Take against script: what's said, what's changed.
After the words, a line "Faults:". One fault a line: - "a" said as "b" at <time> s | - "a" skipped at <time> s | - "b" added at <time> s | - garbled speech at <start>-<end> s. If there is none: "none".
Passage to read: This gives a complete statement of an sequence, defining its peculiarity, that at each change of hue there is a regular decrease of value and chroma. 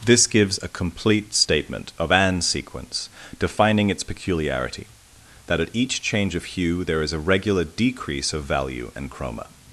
This gives a complete statement of an sequence, defining its peculiarity, that at each change of hue there is a regular decrease of value and chroma.
Faults:
none